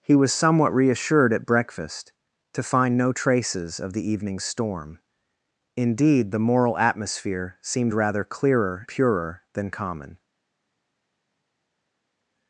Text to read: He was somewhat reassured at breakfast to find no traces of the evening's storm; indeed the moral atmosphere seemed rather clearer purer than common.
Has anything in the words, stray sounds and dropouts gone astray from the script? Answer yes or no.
no